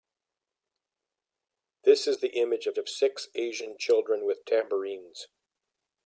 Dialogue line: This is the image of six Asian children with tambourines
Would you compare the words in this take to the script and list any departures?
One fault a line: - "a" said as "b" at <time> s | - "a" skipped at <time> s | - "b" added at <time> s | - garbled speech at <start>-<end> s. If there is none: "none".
- "of" added at 2.8 s